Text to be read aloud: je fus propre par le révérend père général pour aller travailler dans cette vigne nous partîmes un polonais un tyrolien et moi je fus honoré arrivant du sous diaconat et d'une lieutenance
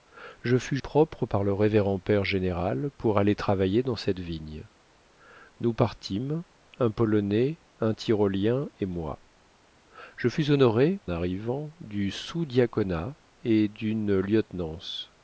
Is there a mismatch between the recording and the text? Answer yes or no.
no